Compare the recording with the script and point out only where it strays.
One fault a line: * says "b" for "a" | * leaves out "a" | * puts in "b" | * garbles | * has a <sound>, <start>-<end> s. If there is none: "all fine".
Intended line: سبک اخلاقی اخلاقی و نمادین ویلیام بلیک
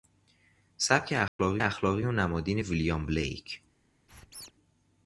* has a dropout, 1.3-1.4 s
* has a squeak, 4.1-4.5 s